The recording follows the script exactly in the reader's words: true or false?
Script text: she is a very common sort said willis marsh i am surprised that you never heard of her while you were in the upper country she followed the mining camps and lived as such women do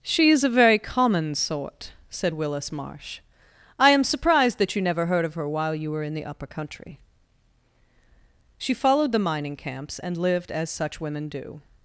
true